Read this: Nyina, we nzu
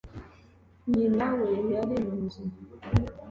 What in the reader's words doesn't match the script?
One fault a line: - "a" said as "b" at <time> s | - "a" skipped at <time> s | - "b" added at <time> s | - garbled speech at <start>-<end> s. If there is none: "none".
- "yari mu" added at 1.7 s